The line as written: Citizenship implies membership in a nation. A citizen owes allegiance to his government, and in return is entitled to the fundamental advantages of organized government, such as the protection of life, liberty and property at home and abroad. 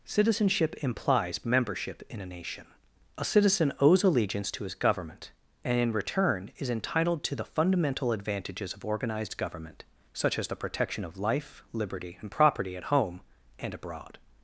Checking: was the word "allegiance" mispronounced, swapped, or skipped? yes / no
no